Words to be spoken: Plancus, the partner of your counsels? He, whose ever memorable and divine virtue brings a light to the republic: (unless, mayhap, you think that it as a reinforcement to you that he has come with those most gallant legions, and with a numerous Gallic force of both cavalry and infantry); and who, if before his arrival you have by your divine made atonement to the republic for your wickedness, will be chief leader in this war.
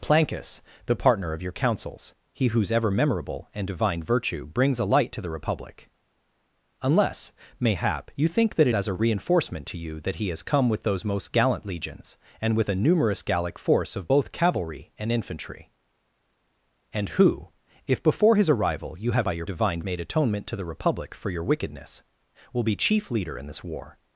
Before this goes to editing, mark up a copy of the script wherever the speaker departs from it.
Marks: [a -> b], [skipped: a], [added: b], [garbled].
Plancus, the partner of your counsels? He, whose ever memorable and divine virtue brings a light to the republic: (unless, mayhap, you think that it as a reinforcement to you that he has come with those most gallant legions, and with a numerous Gallic force of both cavalry and infantry); and who, if before his arrival you have by your divine made atonement to the republic for your wickedness, will be chief leader in this war.